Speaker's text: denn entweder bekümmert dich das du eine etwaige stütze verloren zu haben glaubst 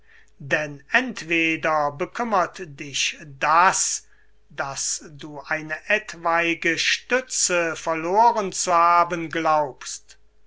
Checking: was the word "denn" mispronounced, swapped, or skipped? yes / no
no